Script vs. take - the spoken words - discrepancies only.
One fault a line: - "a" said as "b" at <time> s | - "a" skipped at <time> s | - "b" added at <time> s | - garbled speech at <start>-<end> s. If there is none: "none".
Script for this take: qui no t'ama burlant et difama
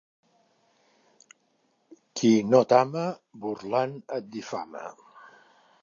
none